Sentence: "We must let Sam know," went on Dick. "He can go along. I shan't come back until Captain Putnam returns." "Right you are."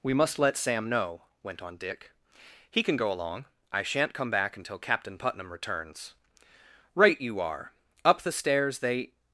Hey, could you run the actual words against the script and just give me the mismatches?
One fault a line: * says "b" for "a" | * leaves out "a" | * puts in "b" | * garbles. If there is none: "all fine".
* puts in "Up the stairs they"